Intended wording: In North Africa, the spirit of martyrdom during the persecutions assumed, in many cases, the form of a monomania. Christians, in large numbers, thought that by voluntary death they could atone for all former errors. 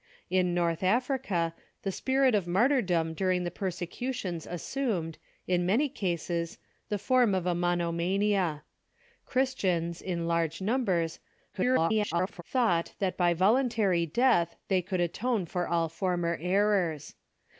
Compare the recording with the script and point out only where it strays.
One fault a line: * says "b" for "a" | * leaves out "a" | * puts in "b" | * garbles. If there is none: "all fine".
* garbles